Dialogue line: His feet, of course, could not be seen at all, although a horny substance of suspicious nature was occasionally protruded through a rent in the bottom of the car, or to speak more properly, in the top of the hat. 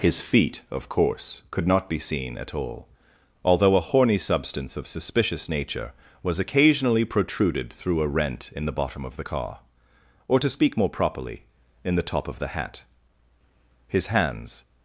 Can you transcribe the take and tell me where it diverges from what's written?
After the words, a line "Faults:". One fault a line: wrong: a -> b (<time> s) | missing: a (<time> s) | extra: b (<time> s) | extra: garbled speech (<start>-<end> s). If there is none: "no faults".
His feet, of course, could not be seen at all, although a horny substance of suspicious nature was occasionally protruded through a rent in the bottom of the car, or to speak more properly, in the top of the hat. His hands
Faults:
extra: His hands (13.9 s)